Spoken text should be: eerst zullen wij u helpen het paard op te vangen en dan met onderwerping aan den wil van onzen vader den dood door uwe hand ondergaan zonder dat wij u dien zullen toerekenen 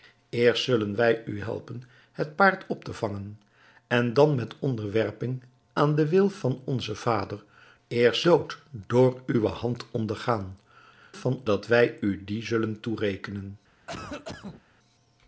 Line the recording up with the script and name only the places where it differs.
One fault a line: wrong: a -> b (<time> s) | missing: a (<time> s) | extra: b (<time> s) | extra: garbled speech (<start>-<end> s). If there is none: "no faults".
wrong: den -> eerst (7.9 s)
wrong: zonder -> van (11.1 s)